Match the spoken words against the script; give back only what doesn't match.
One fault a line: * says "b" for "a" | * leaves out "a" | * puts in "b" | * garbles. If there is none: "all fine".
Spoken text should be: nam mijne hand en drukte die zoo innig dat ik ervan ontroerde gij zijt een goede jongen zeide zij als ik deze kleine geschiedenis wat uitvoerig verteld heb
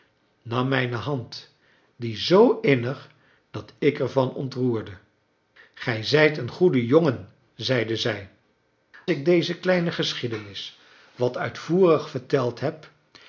* leaves out "en drukte"
* leaves out "als"